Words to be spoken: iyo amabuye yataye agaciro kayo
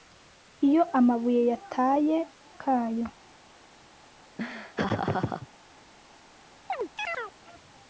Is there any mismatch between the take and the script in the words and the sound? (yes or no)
yes